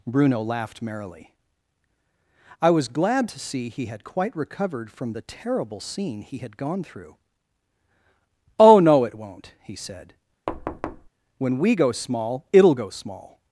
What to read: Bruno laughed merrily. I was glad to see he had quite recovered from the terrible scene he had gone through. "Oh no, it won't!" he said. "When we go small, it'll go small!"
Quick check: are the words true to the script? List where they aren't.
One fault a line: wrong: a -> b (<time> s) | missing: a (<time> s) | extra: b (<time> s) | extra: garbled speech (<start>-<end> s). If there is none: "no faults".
no faults